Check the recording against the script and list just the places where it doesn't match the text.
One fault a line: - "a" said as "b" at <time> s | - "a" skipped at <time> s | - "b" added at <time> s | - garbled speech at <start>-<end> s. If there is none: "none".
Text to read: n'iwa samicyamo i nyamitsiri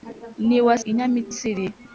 - "samicyamo" skipped at 0.8 s